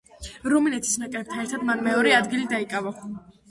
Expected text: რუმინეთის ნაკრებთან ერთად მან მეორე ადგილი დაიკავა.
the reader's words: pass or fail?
pass